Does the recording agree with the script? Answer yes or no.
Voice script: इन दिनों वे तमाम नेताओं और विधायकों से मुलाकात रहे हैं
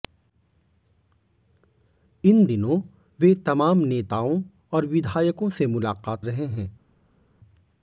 yes